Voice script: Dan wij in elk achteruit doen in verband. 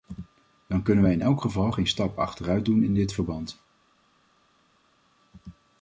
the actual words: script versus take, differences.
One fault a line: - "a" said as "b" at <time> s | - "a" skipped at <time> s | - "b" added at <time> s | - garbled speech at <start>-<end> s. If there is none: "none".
- "kunnen" added at 0.8 s
- "geval geen stap" added at 1.4 s
- "dit" added at 2.9 s